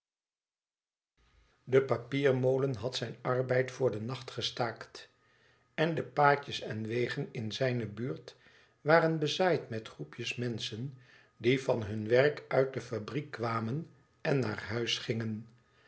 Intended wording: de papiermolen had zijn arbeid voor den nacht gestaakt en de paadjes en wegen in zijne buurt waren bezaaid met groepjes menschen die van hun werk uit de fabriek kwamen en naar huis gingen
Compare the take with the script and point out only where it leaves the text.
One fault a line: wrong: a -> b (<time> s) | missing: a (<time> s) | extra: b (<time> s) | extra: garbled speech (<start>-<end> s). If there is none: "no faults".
no faults